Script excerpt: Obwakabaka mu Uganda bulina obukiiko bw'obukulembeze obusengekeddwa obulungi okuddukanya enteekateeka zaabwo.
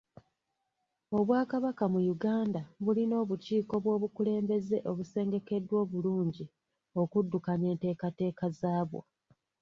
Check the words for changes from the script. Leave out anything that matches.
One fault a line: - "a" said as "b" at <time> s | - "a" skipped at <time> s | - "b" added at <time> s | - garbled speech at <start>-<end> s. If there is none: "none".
none